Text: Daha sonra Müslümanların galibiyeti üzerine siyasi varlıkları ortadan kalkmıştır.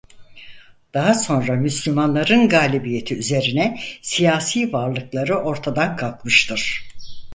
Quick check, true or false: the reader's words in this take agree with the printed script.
true